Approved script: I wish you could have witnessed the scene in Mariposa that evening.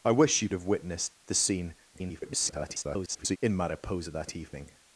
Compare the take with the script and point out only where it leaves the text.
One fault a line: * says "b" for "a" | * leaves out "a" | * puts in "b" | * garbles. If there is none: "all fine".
* leaves out "could"
* garbles